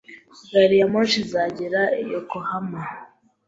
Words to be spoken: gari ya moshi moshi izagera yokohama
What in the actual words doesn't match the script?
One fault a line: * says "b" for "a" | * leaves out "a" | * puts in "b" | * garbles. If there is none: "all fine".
* leaves out "moshi"